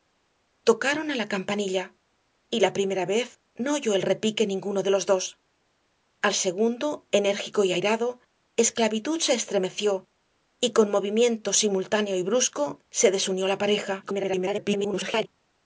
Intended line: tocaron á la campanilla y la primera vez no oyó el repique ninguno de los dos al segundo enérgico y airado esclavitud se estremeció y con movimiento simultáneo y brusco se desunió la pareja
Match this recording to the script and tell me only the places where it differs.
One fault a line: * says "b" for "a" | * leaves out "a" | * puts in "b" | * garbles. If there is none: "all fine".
* garbles